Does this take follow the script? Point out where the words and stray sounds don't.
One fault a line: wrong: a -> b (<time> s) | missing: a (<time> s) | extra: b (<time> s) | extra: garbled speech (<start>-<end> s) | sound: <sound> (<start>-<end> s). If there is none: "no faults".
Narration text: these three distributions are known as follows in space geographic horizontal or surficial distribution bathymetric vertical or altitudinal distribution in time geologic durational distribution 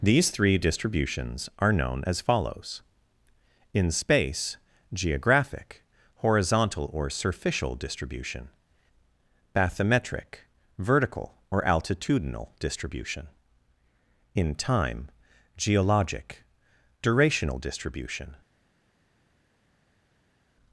no faults